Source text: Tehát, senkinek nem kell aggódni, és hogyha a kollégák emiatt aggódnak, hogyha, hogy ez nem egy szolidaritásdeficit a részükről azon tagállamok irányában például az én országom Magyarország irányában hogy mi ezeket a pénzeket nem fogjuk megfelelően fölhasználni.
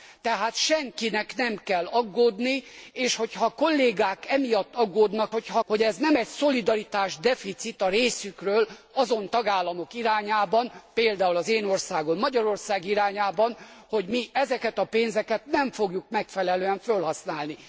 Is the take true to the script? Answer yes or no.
yes